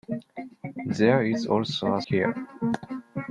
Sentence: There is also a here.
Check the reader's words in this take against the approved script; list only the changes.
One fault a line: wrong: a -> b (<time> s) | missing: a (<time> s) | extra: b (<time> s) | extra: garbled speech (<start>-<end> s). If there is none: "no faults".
no faults